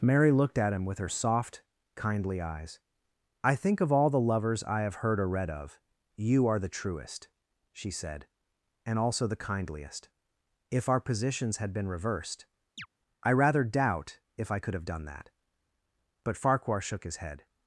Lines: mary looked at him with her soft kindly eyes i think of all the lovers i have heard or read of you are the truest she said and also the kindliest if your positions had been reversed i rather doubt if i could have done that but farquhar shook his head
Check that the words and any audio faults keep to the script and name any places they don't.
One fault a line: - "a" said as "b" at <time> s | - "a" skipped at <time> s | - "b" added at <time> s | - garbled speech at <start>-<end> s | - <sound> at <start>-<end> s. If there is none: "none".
- "your" said as "our" at 10.9 s
- chirp at 12.8-12.9 s